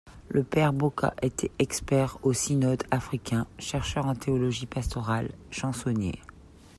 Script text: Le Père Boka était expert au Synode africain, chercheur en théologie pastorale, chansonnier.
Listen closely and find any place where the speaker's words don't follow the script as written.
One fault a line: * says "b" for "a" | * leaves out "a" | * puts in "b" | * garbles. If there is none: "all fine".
all fine